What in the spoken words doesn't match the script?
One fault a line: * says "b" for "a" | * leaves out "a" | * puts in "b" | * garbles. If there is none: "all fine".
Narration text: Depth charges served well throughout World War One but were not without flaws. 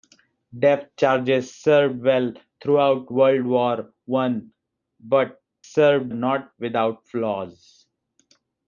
* says "served" for "were"